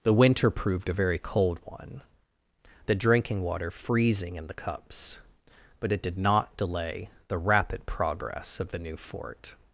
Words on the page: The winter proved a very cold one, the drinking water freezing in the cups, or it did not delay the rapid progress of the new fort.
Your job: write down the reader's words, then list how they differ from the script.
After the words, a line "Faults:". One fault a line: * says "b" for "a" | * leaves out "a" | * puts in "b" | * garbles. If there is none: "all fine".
The winter proved a very cold one, the drinking water freezing in the cups, but it did not delay the rapid progress of the new fort.
Faults:
* says "but" for "or"